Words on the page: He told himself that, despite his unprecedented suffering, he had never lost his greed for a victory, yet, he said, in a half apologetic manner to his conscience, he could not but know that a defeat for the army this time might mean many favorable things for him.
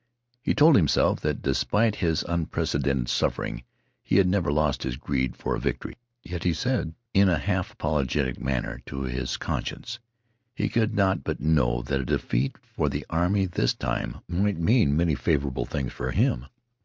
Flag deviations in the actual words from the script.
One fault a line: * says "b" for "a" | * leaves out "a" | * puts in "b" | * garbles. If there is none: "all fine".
all fine